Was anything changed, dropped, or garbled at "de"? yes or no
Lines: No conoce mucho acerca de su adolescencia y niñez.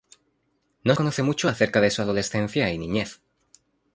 no